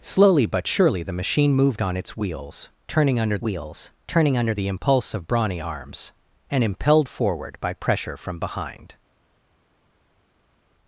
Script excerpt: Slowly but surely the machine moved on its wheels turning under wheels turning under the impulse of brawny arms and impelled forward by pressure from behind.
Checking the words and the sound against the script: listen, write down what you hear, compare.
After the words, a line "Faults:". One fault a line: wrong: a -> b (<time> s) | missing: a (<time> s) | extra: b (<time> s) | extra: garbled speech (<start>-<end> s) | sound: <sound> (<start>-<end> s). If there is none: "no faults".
Slowly but surely the machine moved on its wheels turning under wheels turning under the impulse of brawny arms and impelled forward by pressure from behind.
Faults:
no faults